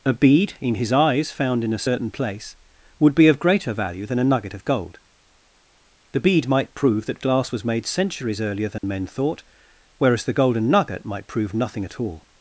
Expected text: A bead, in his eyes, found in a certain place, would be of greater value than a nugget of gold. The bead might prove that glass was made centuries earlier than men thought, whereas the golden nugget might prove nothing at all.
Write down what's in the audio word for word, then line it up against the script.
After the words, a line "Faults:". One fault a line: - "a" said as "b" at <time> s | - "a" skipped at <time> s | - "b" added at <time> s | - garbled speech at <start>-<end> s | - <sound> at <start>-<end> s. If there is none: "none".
A bead, in his eyes, found in a certain place, would be of greater value than a nugget of gold. The bead might prove that glass was made centuries earlier than men thought, whereas the golden nugget might prove nothing at all.
Faults:
- dropout at 8.8-8.8 s